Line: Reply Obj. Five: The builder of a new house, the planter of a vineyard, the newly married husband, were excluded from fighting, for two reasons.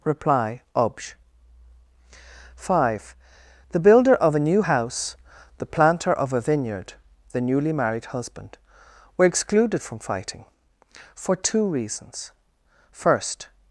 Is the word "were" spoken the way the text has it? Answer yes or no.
yes